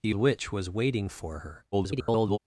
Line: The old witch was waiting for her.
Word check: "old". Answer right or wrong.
wrong